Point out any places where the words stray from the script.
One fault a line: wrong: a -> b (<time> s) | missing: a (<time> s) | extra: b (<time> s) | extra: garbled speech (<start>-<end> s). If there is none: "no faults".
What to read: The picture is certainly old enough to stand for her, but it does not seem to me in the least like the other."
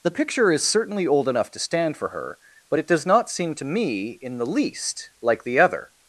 no faults